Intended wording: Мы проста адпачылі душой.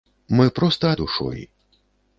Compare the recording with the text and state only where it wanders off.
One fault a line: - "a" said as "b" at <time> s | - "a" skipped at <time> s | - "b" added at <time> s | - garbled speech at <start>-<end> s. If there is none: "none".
- "адпачылі" skipped at 0.9 s